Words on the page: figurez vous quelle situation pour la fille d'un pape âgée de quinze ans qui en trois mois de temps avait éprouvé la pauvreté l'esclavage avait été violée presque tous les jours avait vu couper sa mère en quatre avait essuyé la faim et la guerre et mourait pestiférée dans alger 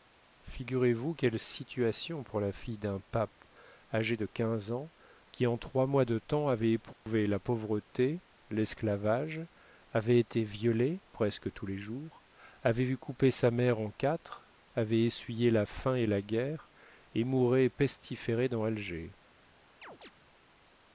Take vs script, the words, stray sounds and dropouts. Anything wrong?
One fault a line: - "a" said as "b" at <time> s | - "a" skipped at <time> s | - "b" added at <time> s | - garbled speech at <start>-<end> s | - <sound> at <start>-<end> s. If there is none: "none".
- dropout at 6.9-7.1 s
- chirp at 19.8-20.1 s